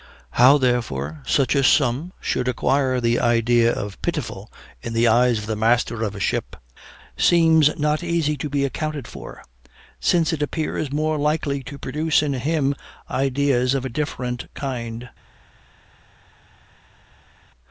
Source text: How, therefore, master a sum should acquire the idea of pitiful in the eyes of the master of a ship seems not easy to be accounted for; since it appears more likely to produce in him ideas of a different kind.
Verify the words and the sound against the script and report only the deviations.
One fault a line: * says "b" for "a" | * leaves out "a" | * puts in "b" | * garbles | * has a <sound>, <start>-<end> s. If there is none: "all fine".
* says "such" for "master"